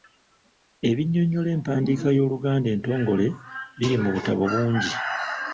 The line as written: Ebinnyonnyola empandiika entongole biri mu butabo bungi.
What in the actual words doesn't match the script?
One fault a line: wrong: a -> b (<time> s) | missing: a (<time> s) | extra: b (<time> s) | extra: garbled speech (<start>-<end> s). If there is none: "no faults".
extra: y'Oluganda (2.2 s)